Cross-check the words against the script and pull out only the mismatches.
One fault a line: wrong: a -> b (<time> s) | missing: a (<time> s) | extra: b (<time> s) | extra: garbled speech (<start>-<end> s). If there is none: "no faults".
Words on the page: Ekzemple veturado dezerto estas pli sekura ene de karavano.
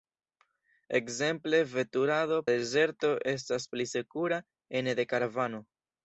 no faults